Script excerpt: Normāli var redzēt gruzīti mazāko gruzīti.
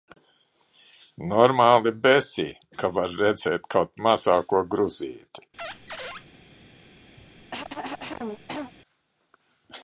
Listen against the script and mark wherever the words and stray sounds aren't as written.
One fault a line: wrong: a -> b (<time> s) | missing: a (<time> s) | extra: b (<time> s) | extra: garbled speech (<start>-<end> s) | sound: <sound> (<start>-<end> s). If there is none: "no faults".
extra: besī ka (2.1 s)
wrong: gruzīti -> kaut (3.8 s)
sound: squeak (5.6-6.3 s)
sound: cough (7.2-8.7 s)